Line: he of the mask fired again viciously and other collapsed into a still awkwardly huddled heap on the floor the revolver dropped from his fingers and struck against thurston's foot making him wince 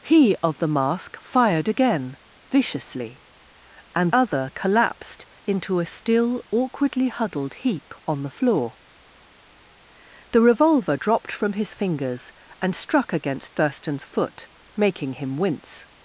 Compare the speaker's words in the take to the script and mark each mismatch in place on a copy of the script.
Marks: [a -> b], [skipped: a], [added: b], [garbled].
he of the mask fired again viciously and other collapsed into a still awkwardly huddled heap on the floor the revolver dropped from his fingers and struck against thurston's foot making him wince